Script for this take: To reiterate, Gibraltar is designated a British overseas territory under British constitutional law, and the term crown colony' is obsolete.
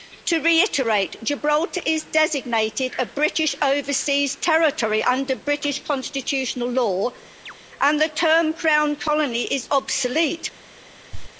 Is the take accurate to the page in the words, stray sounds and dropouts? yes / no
no